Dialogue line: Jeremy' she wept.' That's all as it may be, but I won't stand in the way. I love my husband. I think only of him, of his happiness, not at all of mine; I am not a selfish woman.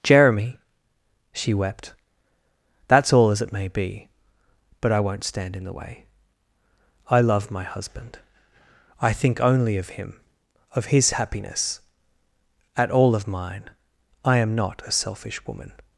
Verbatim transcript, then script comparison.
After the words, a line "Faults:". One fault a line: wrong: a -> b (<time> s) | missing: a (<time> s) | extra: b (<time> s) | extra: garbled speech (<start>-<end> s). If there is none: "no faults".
Jeremy' she wept.' That's all as it may be, but I won't stand in the way. I love my husband. I think only of him, of his happiness, at all of mine; I am not a selfish woman.
Faults:
missing: not (11.8 s)